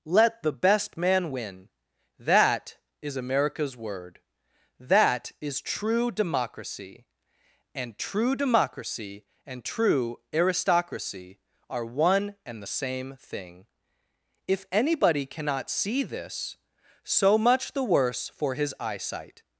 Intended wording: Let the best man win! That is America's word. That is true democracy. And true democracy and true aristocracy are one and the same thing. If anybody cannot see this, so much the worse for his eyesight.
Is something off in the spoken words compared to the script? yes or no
no